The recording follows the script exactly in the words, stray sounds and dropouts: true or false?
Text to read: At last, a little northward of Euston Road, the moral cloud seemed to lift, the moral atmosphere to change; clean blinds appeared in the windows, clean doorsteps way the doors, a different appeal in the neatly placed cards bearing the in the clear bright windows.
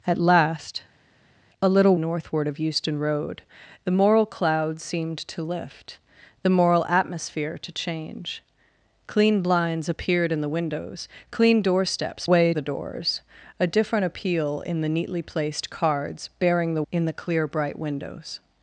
true